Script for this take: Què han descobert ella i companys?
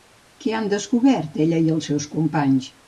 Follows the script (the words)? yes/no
no